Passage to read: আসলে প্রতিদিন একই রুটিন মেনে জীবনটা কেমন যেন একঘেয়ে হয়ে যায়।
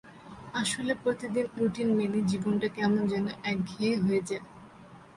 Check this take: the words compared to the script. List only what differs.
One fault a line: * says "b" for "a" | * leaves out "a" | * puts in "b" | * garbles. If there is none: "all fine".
* leaves out "একই"